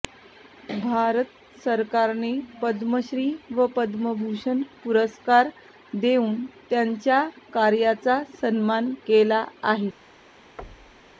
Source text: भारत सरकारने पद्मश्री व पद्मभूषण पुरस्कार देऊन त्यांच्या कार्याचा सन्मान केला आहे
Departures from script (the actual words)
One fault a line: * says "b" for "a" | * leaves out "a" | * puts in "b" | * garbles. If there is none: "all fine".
all fine